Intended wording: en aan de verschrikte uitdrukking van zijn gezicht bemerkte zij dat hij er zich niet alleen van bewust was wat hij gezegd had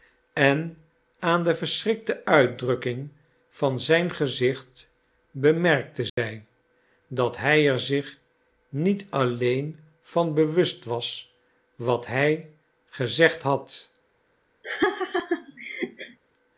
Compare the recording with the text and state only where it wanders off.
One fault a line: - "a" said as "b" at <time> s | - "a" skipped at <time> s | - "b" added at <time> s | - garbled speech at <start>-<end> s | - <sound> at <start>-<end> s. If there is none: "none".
- dropout at 6.1-6.2 s
- laugh at 14.6-16.2 s